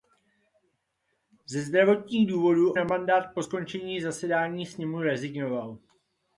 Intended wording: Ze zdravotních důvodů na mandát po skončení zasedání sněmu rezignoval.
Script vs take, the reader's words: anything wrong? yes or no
no